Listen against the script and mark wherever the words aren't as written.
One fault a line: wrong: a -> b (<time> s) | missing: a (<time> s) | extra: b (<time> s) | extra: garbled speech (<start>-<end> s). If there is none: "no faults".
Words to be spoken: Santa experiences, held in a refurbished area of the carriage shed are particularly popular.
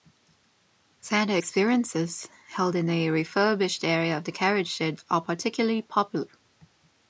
no faults